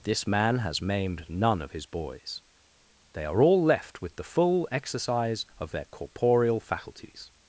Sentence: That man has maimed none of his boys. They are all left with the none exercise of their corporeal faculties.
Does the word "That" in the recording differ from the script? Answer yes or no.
yes